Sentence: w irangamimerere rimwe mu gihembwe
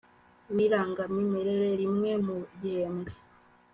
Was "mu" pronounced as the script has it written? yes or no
yes